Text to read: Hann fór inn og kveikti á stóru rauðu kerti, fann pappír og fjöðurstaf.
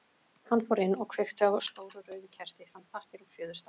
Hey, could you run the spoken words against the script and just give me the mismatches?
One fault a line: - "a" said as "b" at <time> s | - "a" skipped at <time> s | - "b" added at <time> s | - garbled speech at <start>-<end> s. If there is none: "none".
none